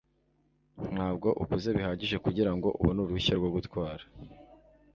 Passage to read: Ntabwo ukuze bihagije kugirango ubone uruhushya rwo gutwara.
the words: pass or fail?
pass